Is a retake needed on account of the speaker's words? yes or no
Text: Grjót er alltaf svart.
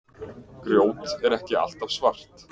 yes